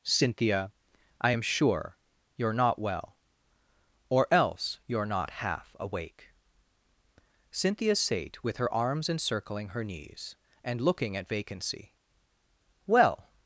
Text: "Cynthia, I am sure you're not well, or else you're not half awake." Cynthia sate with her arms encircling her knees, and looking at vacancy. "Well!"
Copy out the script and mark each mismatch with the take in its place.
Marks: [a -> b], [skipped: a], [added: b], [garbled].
"Cynthia, I am sure you're not well, or else you're not half awake." Cynthia sate with her arms encircling her knees, and looking at vacancy. "Well!"